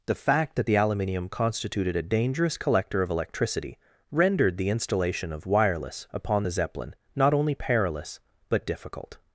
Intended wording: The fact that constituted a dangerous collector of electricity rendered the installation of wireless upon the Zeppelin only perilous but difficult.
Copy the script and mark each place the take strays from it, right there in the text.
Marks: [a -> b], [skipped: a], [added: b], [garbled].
The fact that [added: the aluminium] constituted a dangerous collector of electricity rendered the installation of wireless upon the Zeppelin [added: not] only perilous but difficult.